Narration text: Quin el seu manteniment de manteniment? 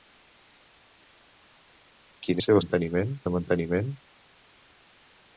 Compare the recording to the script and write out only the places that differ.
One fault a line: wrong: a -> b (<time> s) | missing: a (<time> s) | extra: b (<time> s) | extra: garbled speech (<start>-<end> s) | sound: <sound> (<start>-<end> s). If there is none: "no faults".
no faults